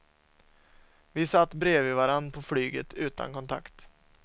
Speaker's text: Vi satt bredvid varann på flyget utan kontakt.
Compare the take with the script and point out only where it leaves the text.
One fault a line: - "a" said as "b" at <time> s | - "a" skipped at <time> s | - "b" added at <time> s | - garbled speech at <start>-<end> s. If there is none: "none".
none